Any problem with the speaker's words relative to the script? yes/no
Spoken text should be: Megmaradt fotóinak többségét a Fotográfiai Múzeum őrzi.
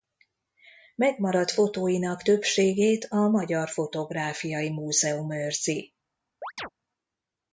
yes